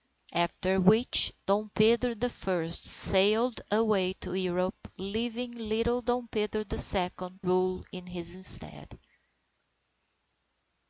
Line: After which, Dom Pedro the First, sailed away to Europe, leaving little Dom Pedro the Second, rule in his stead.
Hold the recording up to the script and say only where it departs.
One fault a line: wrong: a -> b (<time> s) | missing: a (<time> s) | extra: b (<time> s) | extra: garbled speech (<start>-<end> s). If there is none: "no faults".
no faults